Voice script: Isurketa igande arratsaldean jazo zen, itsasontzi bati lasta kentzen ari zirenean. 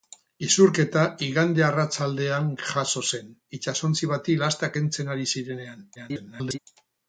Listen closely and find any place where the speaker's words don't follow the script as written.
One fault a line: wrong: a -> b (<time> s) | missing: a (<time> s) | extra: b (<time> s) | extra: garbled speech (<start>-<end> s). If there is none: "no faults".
extra: garbled speech (6.0-6.6 s)